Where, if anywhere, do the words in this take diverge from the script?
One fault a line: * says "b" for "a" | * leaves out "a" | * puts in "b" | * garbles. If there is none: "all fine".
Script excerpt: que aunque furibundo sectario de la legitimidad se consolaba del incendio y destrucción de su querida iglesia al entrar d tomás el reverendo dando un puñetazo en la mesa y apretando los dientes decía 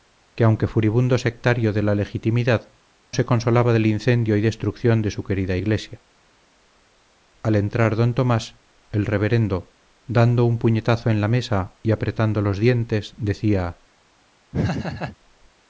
all fine